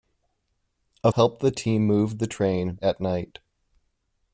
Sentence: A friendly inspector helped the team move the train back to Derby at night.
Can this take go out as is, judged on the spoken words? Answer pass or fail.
fail